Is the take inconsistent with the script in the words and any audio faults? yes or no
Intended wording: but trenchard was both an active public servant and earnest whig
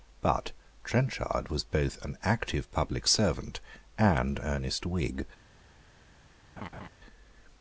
yes